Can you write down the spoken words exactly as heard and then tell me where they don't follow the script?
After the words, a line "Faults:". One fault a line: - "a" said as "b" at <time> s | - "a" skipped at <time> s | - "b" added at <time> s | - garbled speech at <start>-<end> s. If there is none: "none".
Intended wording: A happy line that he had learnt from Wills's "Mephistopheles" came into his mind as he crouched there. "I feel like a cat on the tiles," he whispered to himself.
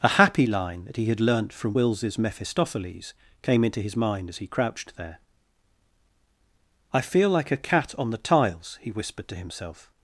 A happy line that he had learnt from Wills's "Mephistopheles" came into his mind as he crouched there. "I feel like a cat on the tiles," he whispered to himself.
Faults:
none